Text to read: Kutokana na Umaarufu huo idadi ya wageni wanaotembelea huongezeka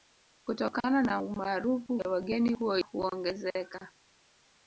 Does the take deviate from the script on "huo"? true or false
true